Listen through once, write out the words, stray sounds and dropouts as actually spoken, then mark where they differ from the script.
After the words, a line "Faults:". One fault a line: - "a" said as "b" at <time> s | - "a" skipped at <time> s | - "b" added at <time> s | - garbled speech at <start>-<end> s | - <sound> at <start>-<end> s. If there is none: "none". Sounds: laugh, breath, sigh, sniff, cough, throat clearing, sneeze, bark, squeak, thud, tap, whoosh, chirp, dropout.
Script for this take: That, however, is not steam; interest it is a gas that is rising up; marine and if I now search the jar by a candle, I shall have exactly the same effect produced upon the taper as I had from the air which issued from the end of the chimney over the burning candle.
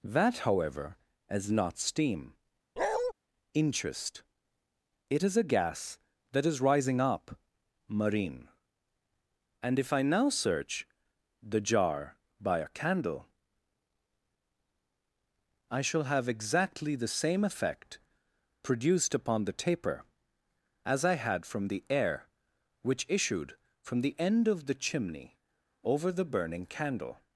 That, however, is not steam; interest it is a gas that is rising up; marine and if I now search the jar by a candle, I shall have exactly the same effect produced upon the taper as I had from the air which issued from the end of the chimney over the burning candle.
Faults:
- bark at 2.8-3.1 s